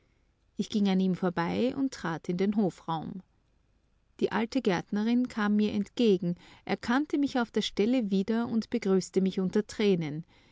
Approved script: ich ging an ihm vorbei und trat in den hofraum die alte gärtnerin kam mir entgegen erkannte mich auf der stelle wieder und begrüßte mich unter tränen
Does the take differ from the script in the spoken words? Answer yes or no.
no